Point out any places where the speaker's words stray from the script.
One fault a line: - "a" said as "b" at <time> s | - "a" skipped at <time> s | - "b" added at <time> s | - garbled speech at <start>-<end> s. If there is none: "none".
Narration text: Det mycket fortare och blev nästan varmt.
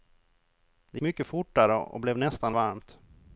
none